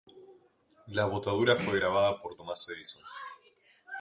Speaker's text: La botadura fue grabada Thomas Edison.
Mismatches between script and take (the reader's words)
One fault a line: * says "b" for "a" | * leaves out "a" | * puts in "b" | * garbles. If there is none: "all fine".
* puts in "por"